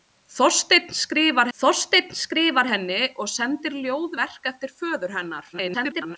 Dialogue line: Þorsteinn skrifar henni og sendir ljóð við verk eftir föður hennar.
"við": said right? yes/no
no